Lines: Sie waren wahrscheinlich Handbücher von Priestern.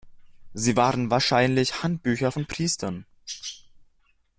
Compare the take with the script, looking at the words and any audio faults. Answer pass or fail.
pass